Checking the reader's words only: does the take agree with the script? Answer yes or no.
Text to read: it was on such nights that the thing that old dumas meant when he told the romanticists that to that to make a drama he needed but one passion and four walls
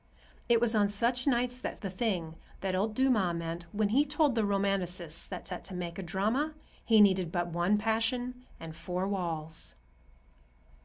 yes